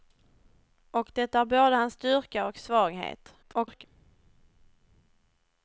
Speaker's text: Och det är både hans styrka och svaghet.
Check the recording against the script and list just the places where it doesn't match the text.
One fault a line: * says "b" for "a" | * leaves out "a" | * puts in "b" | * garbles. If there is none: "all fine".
* garbles